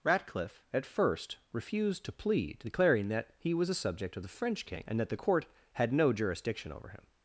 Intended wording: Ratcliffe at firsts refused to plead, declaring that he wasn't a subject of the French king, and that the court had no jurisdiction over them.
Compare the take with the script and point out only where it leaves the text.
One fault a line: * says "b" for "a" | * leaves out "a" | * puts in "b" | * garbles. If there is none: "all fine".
* says "first" for "firsts"
* says "was" for "wasn't"
* says "him" for "them"